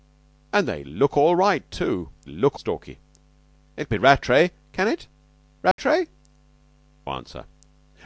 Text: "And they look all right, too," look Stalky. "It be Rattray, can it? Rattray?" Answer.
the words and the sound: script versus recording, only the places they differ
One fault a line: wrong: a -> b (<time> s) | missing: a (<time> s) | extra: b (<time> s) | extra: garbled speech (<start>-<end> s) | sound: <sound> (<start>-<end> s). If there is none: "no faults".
sound: dropout (5.7-5.8 s)